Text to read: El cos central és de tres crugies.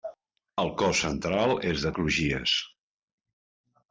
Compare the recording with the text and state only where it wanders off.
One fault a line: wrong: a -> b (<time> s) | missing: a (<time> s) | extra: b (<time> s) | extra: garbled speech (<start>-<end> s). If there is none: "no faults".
missing: tres (1.9 s)